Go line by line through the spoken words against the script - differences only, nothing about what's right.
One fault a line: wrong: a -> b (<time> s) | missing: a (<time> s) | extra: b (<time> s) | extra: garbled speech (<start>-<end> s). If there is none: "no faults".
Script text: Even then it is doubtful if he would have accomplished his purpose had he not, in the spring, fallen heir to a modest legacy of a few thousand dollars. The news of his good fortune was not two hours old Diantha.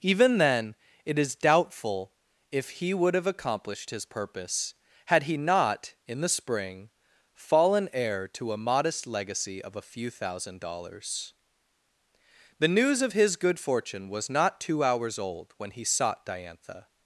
extra: when he sought (15.6 s)